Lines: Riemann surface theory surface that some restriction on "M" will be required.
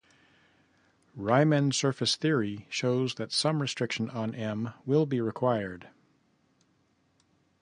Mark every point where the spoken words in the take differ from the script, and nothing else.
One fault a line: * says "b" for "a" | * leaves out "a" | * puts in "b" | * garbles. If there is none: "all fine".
* says "shows" for "surface"